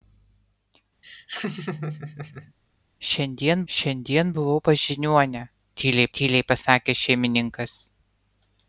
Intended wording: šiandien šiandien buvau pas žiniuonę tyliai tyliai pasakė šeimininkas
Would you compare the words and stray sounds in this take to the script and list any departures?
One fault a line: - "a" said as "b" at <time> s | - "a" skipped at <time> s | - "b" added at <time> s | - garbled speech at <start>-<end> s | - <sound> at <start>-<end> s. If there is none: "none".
- laugh at 1.0-2.5 s